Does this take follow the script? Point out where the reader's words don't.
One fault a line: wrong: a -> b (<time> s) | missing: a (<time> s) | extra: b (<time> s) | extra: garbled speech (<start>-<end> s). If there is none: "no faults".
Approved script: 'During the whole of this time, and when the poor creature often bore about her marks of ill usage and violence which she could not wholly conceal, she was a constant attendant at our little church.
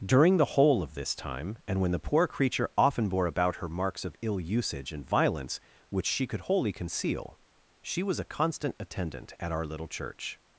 missing: not (6.4 s)